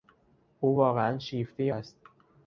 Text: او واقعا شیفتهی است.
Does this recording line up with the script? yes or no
yes